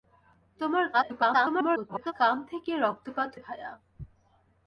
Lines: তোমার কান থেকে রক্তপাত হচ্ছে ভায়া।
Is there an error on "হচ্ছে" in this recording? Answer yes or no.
yes